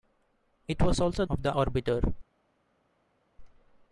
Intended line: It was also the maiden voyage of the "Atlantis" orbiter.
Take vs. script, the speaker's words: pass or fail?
fail